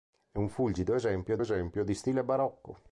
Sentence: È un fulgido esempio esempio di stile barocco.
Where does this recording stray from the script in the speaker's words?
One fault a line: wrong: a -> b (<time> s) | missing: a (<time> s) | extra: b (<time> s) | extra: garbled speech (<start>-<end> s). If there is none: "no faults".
no faults